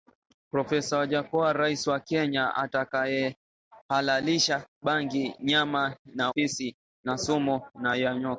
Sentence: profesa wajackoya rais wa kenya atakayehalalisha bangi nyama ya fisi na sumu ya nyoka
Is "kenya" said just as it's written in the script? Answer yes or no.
yes